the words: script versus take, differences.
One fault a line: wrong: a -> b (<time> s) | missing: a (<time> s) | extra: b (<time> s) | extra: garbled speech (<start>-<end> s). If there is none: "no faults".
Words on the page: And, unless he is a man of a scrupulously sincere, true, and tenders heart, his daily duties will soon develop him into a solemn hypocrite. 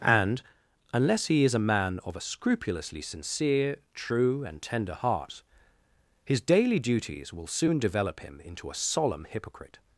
wrong: tenders -> tender (4.6 s)